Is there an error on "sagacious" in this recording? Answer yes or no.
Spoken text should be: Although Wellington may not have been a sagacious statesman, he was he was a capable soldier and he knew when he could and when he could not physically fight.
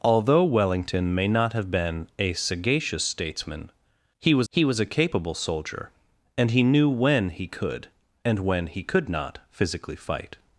no